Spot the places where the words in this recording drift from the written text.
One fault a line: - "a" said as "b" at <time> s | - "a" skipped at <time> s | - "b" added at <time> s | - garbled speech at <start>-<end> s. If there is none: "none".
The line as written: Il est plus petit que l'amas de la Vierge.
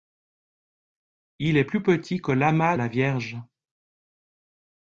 - "de" skipped at 2.8 s